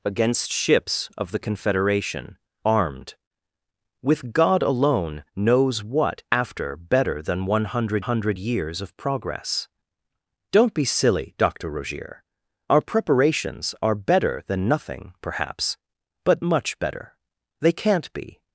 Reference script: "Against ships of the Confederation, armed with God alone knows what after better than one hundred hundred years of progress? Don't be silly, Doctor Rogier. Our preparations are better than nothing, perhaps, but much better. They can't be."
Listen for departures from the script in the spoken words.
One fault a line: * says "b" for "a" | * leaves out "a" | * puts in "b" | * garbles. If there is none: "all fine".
all fine